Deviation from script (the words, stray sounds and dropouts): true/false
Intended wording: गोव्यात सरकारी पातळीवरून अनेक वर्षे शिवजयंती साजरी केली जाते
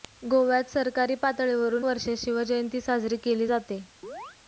true